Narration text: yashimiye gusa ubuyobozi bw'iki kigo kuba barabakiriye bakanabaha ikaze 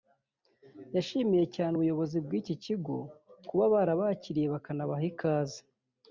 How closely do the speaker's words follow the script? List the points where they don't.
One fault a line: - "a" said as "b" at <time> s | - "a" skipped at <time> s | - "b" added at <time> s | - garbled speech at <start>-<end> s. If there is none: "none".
- "gusa" said as "cyane" at 1.6 s